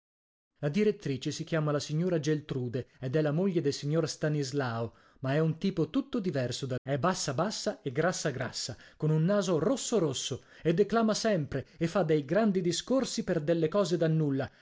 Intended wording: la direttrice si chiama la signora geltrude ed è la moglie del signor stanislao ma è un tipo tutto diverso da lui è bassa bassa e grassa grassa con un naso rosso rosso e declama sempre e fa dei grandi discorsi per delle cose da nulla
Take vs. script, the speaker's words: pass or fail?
fail